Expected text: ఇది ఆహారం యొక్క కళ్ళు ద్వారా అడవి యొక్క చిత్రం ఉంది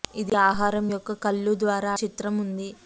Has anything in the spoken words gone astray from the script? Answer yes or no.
yes